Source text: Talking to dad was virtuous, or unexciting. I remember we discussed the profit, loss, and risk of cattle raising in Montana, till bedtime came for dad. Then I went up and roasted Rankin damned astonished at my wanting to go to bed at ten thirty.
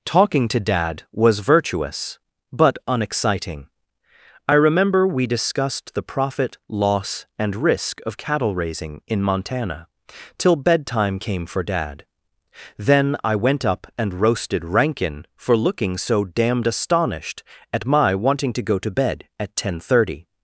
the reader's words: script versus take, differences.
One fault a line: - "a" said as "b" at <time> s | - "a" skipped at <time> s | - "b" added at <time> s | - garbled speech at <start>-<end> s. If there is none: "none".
- "or" said as "but" at 2.5 s
- "for looking so" added at 15.4 s